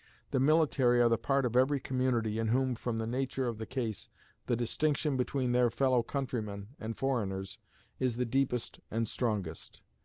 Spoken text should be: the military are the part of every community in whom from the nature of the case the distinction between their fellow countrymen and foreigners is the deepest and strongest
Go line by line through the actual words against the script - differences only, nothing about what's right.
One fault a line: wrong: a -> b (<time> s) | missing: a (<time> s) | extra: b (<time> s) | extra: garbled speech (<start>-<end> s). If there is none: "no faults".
no faults